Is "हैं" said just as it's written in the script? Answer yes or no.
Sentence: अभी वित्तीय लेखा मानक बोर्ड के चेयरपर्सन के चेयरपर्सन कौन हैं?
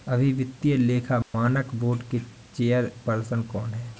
yes